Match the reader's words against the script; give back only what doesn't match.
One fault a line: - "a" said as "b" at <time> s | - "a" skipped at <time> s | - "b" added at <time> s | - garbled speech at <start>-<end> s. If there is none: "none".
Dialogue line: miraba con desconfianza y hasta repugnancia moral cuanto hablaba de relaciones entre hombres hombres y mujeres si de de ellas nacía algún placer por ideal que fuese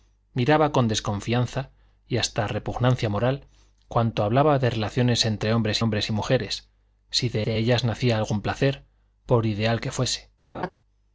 none